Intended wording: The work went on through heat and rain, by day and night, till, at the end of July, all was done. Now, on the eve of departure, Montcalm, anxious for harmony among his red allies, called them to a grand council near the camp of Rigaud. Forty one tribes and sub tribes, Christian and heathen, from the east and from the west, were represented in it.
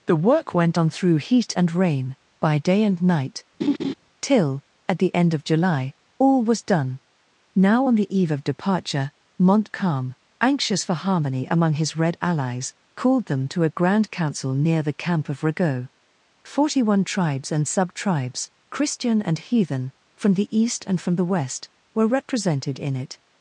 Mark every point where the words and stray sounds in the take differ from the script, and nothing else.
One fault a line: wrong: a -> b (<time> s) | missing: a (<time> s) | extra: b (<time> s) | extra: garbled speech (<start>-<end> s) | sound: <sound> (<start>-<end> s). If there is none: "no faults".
sound: laugh (3.6-3.9 s)